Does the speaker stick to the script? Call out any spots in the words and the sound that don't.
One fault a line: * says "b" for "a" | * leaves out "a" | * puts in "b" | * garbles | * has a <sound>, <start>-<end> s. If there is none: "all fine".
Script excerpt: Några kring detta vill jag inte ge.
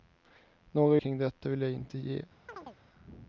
* has a chirp, 2.5-2.8 s